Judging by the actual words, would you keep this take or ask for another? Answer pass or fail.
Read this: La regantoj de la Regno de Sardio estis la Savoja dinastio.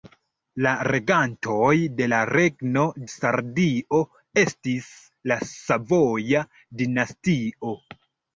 fail